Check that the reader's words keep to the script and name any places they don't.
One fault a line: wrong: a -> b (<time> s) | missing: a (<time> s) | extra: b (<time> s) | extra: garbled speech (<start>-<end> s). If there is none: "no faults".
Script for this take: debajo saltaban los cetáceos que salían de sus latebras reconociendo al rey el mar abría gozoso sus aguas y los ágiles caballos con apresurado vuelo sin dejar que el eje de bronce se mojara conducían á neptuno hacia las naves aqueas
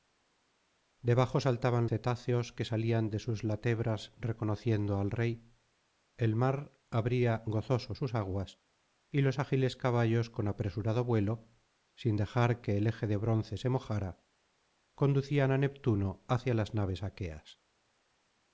missing: los (1.9 s)